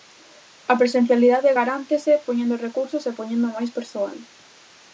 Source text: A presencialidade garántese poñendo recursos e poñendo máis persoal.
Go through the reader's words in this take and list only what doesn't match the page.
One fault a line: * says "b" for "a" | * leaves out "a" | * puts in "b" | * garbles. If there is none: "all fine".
all fine